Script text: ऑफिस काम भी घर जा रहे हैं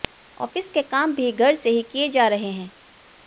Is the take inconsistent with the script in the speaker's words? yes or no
yes